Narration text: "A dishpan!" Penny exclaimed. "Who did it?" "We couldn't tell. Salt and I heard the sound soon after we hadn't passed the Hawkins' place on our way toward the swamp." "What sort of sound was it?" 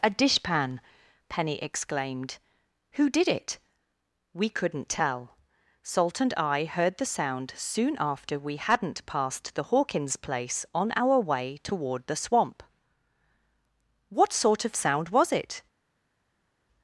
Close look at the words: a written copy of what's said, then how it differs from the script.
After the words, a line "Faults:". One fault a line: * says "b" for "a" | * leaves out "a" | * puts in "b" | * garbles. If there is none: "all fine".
"A dishpan!" Penny exclaimed. "Who did it?" "We couldn't tell. Salt and I heard the sound soon after we hadn't passed the Hawkins' place on our way toward the swamp." "What sort of sound was it?"
Faults:
all fine